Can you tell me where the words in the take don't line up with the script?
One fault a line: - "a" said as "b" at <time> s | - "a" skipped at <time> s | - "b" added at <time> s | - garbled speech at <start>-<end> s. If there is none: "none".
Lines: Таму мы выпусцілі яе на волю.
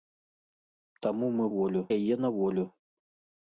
- "выпусцілі" said as "волю" at 1.6 s